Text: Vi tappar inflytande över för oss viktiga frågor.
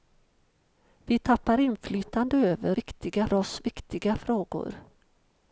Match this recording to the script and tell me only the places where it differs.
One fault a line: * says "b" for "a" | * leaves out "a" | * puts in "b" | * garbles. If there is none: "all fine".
* says "viktiga" for "för"